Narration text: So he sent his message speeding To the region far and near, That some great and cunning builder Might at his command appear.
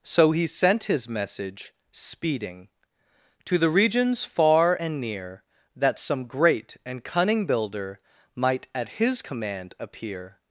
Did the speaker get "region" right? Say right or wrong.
wrong